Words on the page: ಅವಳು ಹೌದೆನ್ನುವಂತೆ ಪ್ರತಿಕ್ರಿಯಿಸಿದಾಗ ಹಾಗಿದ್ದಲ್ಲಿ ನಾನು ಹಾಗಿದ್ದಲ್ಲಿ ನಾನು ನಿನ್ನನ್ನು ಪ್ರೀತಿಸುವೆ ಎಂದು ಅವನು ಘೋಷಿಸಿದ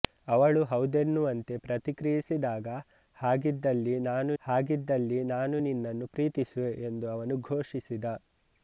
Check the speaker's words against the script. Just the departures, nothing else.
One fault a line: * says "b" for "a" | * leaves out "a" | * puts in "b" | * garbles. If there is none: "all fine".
all fine